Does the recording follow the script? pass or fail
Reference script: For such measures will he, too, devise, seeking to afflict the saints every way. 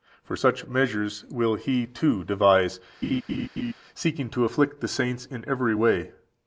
fail